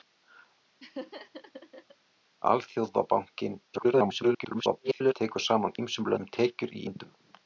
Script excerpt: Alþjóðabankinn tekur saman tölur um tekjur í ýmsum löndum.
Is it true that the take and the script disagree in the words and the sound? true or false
true